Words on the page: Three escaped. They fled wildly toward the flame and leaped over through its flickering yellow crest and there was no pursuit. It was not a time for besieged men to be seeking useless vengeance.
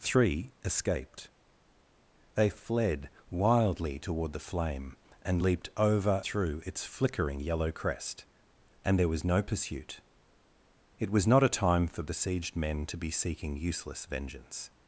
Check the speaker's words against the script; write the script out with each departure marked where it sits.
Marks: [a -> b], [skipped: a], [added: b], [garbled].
Three escaped. They fled wildly toward the flame and leaped over through its flickering yellow crest and there was no pursuit. It was not a time for besieged men to be seeking useless vengeance.